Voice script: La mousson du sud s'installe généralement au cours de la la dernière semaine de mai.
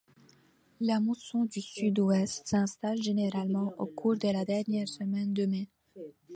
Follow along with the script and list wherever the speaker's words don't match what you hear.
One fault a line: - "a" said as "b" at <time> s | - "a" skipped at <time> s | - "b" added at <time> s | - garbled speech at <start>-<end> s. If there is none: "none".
- "ouest" added at 2.0 s
- "la" skipped at 4.4 s